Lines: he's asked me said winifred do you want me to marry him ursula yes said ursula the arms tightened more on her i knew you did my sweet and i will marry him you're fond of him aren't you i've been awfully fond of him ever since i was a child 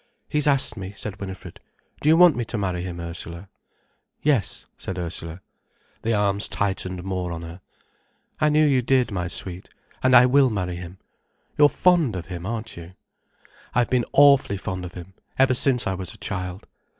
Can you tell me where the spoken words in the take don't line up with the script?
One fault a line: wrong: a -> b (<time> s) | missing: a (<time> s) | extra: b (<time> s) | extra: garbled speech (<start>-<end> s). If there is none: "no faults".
no faults